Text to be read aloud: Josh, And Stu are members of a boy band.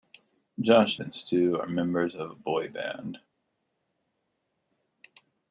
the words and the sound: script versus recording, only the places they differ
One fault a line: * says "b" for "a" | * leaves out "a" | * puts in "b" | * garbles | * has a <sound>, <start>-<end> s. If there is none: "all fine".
all fine